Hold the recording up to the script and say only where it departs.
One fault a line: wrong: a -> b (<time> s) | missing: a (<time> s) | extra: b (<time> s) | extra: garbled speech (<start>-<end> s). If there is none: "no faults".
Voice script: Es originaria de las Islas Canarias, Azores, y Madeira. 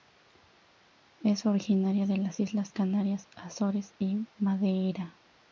no faults